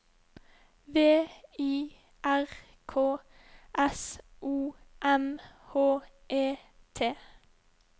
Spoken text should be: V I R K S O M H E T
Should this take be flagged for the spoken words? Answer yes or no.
no